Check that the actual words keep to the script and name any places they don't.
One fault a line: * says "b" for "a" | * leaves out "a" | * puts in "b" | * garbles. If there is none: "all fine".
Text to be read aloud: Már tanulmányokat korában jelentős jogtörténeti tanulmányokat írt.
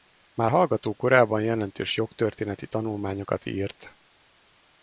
* says "hallgató" for "tanulmányokat"